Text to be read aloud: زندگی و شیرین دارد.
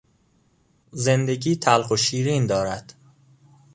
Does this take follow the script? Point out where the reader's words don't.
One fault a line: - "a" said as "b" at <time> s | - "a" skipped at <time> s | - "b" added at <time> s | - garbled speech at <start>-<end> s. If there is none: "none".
- "تلخ" added at 1.6 s